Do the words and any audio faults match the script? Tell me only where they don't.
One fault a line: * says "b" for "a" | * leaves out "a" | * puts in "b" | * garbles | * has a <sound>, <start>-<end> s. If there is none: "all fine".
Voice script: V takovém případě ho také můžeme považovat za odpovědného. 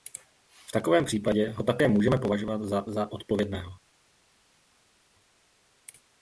* puts in "za"